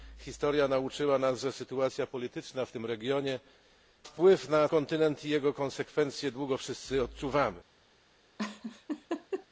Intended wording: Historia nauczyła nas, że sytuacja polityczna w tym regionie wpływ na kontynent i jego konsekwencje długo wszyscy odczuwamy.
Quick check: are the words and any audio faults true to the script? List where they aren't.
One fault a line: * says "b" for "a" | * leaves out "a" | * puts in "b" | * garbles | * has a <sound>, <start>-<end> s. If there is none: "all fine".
* has a laugh, 8.4-9.5 s